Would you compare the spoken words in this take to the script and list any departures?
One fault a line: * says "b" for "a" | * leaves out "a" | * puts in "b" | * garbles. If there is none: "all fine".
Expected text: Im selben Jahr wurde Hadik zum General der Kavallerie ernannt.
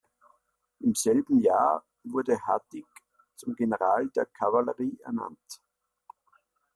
all fine